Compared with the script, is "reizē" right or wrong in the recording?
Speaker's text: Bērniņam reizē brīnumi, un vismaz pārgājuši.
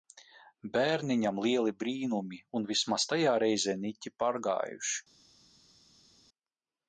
wrong